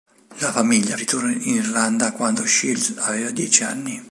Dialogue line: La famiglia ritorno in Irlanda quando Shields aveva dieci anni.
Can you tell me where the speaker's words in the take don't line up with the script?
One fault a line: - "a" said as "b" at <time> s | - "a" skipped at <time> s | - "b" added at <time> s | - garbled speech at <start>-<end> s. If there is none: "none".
none